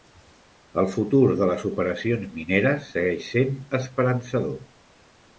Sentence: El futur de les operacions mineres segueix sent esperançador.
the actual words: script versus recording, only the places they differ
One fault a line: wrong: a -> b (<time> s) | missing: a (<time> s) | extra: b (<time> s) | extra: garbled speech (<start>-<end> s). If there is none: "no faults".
no faults